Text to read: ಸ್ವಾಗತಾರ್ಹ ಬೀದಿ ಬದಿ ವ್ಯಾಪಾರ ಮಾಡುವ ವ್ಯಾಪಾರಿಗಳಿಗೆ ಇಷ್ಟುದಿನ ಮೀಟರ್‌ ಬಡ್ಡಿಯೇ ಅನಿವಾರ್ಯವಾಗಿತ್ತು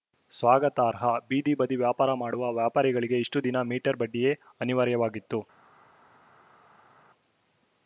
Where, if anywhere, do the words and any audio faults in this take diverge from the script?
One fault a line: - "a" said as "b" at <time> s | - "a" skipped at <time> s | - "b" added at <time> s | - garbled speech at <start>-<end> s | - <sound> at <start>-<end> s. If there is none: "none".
none